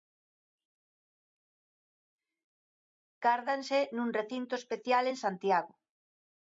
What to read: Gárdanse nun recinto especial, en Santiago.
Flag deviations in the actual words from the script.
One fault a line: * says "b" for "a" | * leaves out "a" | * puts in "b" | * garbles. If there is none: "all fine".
all fine